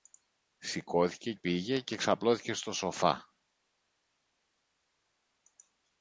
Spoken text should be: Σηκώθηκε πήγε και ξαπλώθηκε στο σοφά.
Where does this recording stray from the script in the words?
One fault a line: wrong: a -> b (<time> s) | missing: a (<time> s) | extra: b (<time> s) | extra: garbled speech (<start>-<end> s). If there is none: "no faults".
no faults